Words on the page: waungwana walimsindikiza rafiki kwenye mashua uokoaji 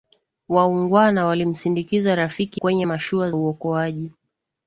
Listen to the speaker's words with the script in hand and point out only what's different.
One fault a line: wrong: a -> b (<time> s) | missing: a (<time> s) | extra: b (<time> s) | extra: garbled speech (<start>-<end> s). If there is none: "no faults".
no faults